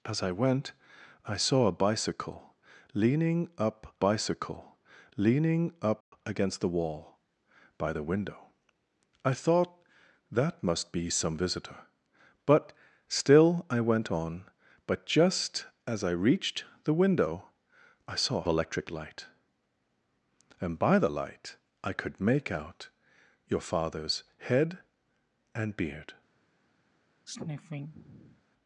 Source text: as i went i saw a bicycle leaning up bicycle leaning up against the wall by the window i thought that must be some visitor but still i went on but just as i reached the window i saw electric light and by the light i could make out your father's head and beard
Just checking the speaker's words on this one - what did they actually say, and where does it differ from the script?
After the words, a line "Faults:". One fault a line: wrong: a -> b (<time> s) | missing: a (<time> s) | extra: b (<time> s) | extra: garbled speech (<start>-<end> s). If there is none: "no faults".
as i went i saw a bicycle leaning up bicycle leaning up against the wall by the window i thought that must be some visitor but still i went on but just as i reached the window i saw electric light and by the light i could make out your father's head and beard
Faults:
no faults